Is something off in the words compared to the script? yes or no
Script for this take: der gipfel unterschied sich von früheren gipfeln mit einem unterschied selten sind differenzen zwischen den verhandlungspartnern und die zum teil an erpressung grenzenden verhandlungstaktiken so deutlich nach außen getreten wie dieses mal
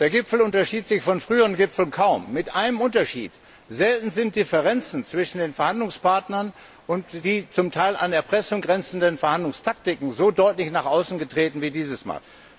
yes